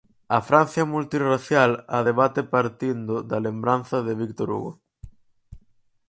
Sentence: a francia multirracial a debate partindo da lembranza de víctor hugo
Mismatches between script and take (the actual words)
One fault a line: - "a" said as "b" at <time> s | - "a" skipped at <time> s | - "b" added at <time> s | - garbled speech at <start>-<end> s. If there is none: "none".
none